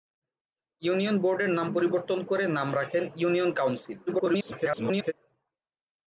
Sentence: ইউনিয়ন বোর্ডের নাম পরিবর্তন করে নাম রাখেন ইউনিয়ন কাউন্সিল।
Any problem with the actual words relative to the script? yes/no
yes